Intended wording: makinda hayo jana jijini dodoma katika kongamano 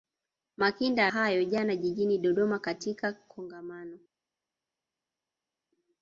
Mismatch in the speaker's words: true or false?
false